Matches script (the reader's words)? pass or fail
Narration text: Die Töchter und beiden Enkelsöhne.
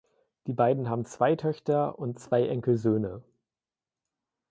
fail